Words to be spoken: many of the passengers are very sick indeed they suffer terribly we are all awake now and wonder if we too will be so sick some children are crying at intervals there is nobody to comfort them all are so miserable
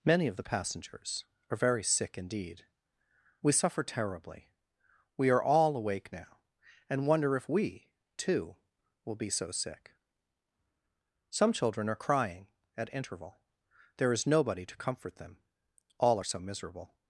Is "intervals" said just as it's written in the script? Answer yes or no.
no